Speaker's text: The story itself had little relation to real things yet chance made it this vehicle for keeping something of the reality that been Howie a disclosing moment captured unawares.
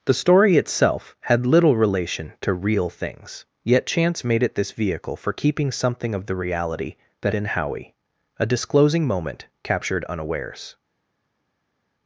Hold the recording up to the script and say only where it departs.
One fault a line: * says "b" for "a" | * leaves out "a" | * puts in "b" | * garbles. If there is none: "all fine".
all fine